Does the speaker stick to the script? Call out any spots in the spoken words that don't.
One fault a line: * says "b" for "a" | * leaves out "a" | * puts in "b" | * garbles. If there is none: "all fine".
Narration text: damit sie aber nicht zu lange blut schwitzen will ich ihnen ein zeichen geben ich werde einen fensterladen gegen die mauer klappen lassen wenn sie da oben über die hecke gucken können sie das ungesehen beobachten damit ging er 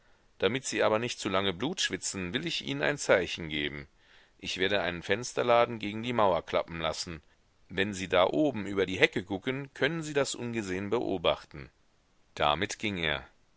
all fine